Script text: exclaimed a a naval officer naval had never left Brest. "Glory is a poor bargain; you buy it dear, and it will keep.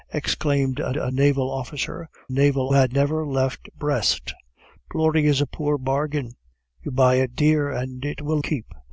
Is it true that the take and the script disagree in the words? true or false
false